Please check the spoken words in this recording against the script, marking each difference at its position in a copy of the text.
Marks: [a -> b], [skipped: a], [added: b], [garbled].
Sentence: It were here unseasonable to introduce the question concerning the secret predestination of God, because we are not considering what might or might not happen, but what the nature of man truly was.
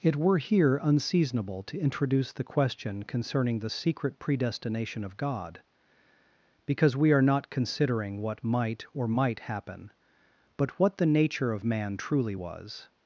It were here unseasonable to introduce the question concerning the secret predestination of God, because we are not considering what might or might [skipped: not] happen, but what the nature of man truly was.